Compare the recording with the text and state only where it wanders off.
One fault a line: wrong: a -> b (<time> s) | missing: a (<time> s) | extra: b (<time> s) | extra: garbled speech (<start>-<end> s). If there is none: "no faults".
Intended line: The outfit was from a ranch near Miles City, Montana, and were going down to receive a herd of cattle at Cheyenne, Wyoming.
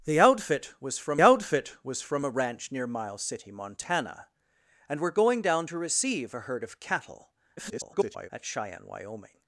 extra: outfit was from (1.2 s)
extra: garbled speech (7.6-8.3 s)